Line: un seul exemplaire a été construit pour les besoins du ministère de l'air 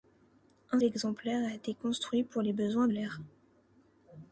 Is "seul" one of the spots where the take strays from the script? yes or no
yes